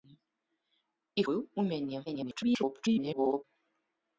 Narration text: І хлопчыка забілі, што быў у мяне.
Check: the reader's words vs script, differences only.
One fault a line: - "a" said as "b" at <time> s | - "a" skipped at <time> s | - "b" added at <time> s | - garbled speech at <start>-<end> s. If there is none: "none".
- "хлопчыка забілі што" skipped at 1.2 s
- garbled speech at 2.1-3.4 s